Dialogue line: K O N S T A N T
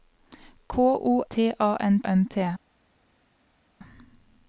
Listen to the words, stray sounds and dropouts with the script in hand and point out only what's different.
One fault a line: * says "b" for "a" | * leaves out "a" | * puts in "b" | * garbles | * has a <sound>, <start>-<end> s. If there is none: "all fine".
* leaves out "N S"
* puts in "N"